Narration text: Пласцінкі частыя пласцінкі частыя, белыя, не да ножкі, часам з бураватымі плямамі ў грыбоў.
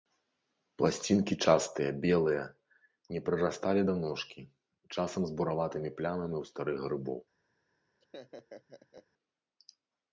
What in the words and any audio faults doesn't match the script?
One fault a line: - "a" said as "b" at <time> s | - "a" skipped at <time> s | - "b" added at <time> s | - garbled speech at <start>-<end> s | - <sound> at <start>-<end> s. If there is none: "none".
- "пласцінкі частыя" skipped at 1.9 s
- "прырасталі" added at 3.3 s
- "старых" added at 6.5 s
- laugh at 8.0-9.1 s